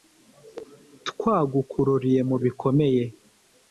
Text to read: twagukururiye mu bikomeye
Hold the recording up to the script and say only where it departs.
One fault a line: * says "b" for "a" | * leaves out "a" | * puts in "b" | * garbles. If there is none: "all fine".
all fine